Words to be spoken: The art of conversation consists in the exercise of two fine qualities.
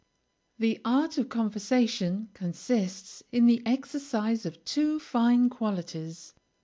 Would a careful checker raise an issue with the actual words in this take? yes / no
no